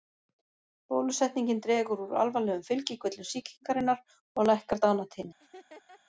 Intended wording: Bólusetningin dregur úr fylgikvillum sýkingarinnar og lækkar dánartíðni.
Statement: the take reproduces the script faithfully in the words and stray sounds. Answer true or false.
false